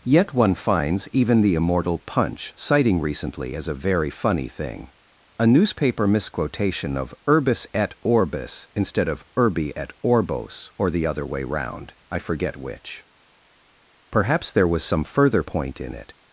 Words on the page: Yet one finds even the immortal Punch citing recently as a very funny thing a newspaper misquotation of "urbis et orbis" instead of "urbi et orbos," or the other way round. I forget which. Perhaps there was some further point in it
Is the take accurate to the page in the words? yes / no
yes